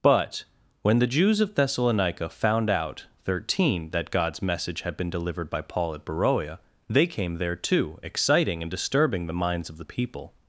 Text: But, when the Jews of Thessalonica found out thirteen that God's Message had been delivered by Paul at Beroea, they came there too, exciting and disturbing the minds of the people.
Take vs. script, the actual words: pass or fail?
pass